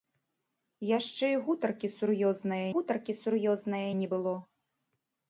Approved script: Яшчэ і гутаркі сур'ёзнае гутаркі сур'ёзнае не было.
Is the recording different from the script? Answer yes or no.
no